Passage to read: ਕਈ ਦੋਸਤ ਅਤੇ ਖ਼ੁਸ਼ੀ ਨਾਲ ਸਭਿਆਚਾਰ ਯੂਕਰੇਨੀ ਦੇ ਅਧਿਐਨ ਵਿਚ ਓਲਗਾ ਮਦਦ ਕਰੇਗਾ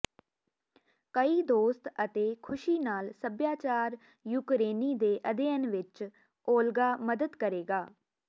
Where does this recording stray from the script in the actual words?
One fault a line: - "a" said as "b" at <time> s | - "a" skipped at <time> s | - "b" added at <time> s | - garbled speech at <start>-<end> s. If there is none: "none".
none